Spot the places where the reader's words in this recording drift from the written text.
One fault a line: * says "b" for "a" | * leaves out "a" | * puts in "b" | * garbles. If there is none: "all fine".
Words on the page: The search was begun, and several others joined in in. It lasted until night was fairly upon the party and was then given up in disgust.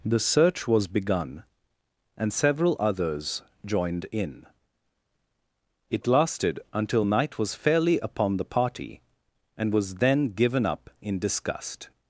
* leaves out "in"